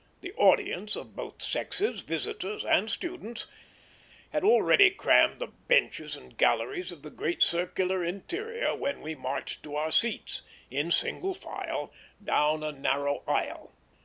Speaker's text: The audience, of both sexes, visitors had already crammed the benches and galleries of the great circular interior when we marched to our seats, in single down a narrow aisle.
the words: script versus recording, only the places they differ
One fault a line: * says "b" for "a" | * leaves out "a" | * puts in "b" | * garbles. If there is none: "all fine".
* puts in "and students"
* puts in "file"